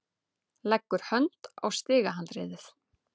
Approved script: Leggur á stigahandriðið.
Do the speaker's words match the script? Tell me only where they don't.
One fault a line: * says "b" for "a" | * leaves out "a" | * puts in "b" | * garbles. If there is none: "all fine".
* puts in "hönd"